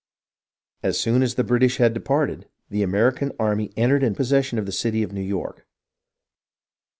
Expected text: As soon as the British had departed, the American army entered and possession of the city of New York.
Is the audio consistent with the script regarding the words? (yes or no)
yes